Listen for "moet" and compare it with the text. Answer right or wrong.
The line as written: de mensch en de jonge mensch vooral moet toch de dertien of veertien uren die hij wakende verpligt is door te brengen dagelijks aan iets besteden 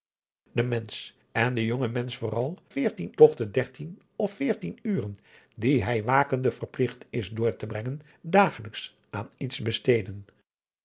wrong